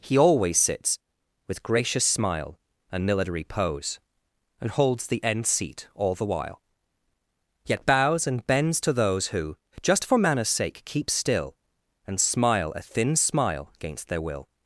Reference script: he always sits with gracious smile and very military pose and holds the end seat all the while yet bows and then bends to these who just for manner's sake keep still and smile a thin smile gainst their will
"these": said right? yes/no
no